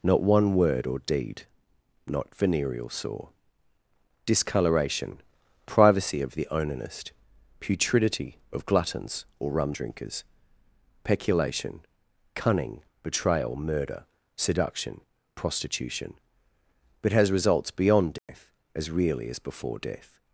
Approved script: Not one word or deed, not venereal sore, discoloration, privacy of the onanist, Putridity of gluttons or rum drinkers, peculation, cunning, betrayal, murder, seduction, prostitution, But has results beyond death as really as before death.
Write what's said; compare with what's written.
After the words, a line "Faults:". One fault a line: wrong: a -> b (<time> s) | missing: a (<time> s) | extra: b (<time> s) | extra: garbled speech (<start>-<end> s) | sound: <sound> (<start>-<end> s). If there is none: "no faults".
Not one word or deed, not venereal sore, discoloration, privacy of the onanist, Putridity of gluttons or rum drinkers, peculation, cunning, betrayal, murder, seduction, prostitution, But has results beyond death as really as before death.
Faults:
sound: dropout (18.2-18.3 s)